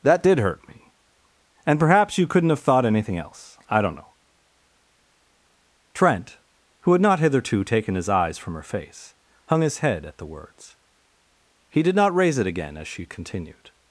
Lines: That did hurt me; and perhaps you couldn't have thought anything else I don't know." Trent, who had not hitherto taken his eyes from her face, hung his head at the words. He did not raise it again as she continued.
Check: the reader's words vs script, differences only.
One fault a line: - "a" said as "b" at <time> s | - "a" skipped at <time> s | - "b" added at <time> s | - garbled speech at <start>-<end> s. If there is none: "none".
none